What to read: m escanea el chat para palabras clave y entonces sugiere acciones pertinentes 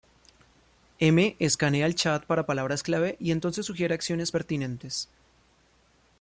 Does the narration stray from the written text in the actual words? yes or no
no